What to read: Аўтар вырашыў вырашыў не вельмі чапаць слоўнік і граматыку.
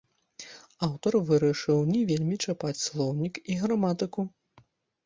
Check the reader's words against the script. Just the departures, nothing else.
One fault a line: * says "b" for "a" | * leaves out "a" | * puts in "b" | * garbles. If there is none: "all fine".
* leaves out "вырашыў"